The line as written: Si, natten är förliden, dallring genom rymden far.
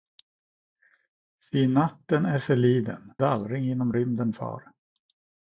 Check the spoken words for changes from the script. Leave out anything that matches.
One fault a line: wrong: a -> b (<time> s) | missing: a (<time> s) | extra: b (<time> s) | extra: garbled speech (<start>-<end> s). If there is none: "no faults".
no faults